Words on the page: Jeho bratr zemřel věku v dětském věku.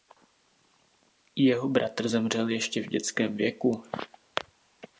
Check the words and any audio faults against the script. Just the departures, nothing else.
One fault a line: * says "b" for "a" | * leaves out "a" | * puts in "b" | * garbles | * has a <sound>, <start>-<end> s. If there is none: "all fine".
* says "ještě" for "věku"